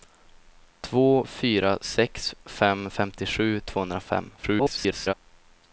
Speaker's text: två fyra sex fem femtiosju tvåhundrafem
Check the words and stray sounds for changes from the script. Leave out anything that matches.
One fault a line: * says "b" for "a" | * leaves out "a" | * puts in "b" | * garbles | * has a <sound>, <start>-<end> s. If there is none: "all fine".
* garbles